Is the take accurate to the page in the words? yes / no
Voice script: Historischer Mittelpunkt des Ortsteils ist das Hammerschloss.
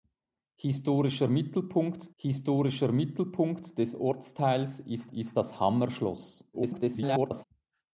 no